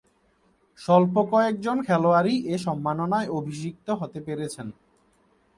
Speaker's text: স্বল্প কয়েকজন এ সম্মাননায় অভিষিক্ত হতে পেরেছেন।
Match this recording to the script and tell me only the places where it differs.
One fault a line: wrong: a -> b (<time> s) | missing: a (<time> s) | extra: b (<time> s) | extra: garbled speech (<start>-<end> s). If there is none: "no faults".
extra: খেলোয়াড়ই (1.8 s)